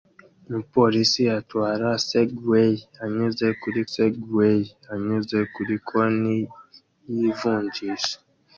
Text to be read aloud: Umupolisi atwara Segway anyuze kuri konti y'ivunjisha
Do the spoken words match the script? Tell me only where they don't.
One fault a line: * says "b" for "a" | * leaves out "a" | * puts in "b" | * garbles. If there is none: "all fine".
* puts in "Segway anyuze kuri"